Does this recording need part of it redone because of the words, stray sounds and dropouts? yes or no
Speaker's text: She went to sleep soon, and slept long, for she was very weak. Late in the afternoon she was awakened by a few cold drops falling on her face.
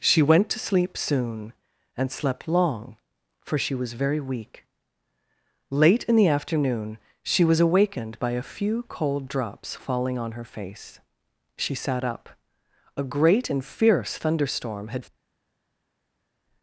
yes